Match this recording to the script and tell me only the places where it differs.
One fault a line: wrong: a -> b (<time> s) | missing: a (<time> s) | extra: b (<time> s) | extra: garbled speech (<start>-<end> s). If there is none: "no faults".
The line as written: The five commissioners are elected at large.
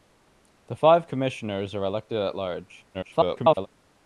extra: garbled speech (2.9-3.7 s)